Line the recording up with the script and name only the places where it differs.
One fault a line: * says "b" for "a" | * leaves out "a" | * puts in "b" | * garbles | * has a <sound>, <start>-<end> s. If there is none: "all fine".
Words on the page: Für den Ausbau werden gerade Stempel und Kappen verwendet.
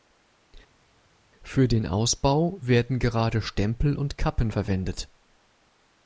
all fine